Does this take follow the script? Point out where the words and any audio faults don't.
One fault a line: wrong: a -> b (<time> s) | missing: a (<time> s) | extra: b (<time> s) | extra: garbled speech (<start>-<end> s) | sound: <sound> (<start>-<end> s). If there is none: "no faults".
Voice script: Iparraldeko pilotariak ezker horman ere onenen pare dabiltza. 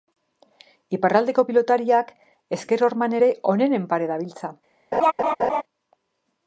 sound: laugh (4.9-5.6 s)